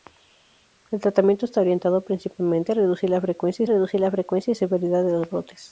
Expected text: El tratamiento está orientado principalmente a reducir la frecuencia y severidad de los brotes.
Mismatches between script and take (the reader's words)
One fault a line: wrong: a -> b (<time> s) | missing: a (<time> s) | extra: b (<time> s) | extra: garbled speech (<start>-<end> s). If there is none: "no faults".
extra: reducir la frecuencia (3.7 s)